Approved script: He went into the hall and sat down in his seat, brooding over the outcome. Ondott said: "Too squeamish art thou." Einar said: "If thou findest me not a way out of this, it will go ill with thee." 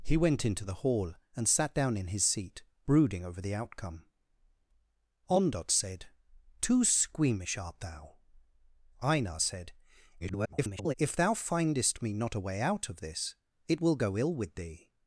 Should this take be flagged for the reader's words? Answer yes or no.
yes